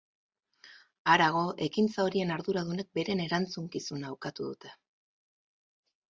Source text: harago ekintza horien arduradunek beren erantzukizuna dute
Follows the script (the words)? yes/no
no